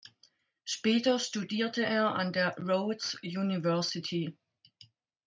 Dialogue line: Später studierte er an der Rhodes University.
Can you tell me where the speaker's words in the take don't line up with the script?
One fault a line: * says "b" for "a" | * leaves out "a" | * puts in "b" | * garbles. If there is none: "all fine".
all fine